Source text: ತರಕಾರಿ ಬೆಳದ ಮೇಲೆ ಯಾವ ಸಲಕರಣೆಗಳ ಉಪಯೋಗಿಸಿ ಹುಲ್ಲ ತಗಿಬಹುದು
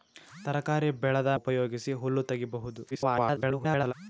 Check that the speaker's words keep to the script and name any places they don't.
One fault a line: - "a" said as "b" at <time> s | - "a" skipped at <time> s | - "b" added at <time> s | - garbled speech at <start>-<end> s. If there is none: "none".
- "ಮೇಲೆ ಯಾವ ಸಲಕರಣೆಗಳ" skipped at 1.3 s
- garbled speech at 2.9-3.9 s